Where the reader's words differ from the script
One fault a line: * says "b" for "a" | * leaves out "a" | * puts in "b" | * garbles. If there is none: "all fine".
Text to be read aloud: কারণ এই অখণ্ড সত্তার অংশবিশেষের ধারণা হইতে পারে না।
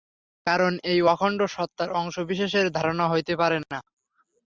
all fine